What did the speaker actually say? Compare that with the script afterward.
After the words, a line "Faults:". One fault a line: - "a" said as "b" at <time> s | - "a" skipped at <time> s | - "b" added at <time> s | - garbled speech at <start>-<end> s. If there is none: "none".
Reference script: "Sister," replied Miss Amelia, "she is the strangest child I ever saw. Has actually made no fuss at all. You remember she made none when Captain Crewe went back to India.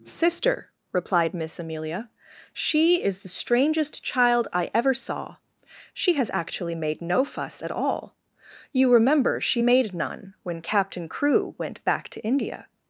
"Sister," replied Miss Amelia, "she is the strangest child I ever saw. She has actually made no fuss at all. You remember she made none when Captain Crewe went back to India.
Faults:
- "She" added at 5.9 s